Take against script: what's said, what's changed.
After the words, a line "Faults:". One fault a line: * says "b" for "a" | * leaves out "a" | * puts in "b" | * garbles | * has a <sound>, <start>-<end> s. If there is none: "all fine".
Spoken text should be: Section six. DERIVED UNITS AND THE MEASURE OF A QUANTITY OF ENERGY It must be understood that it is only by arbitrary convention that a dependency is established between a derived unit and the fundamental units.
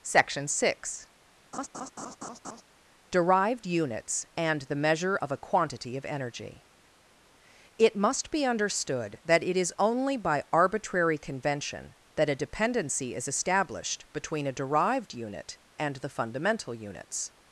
Section six. DERIVED UNITS AND THE MEASURE OF A QUANTITY OF ENERGY It must be understood that it is only by arbitrary convention that a dependency is established between a derived unit and the fundamental units.
Faults:
* has a laugh, 1.5-2.6 s